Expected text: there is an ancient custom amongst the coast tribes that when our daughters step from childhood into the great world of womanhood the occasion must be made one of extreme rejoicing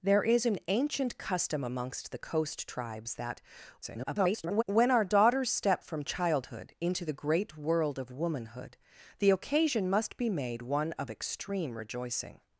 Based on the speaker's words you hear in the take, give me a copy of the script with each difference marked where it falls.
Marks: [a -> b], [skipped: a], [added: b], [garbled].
there is an ancient custom amongst the coast tribes that [garbled] when our daughters step from childhood into the great world of womanhood the occasion must be made one of extreme rejoicing